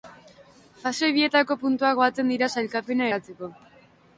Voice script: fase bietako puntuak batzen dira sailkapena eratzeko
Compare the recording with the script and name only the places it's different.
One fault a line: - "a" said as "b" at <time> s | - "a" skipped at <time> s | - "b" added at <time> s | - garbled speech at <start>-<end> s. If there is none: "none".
none